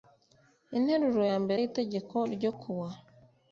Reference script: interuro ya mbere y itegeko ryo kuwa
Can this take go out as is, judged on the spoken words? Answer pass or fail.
pass